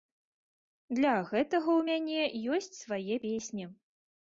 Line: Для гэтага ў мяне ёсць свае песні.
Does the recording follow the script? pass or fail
pass